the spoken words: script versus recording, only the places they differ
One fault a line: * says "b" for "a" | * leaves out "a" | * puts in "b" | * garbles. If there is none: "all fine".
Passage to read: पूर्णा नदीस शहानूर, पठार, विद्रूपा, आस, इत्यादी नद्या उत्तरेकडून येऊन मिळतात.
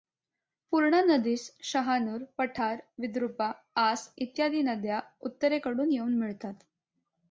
all fine